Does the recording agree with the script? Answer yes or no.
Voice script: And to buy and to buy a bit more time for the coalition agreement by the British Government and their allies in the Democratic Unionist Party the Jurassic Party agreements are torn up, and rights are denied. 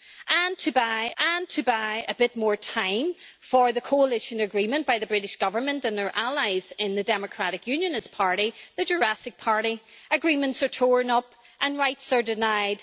yes